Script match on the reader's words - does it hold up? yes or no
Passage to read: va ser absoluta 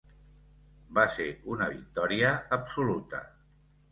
no